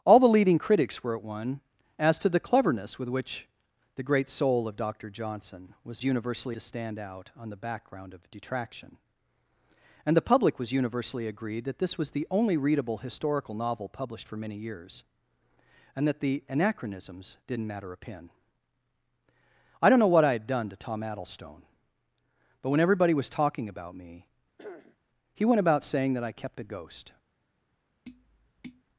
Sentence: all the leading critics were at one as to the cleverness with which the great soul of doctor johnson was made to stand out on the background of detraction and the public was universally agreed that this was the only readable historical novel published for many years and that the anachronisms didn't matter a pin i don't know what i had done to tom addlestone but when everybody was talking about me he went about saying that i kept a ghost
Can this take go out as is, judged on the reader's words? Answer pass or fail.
fail